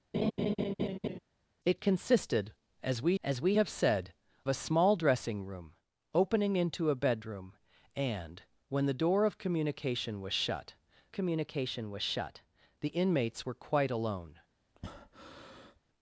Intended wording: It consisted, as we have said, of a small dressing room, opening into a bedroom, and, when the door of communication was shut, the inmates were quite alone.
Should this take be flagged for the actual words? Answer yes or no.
yes